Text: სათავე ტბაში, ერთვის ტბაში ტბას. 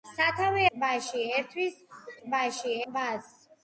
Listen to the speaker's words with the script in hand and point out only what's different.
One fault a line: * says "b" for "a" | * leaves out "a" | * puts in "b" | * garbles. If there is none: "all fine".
all fine